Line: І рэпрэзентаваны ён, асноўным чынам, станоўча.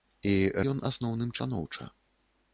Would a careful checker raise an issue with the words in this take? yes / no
yes